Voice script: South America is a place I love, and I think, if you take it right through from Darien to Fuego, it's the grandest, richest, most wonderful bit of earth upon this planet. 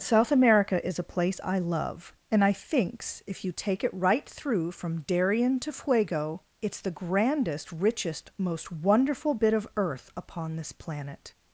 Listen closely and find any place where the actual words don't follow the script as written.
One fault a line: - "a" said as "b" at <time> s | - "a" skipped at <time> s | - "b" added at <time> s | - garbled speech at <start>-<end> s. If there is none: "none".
- "think" said as "thinks" at 2.5 s